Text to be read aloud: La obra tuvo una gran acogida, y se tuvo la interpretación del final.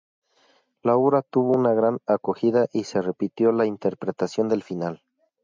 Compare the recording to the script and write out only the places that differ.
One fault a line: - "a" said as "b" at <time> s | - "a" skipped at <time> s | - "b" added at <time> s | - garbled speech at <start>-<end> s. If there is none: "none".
- "tuvo" said as "repitió" at 3.0 s